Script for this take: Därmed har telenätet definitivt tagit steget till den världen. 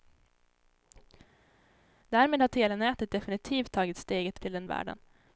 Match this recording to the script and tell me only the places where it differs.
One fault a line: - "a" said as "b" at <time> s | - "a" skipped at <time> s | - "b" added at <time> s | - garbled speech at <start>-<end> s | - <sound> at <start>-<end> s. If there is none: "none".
none